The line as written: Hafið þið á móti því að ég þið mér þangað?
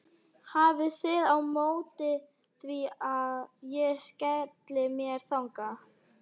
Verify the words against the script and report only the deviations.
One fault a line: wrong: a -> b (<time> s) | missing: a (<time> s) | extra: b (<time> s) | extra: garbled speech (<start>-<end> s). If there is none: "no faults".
wrong: þið -> skelli (4.0 s)